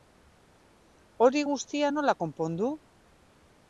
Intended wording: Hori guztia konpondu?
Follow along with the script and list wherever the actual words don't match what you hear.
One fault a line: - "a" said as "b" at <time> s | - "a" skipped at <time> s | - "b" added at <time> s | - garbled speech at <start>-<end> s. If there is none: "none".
- "nola" added at 1.9 s